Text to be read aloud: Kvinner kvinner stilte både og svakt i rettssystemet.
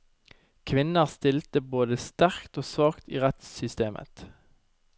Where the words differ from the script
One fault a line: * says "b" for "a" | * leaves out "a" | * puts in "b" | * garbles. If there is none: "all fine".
* leaves out "kvinner"
* puts in "sterkt"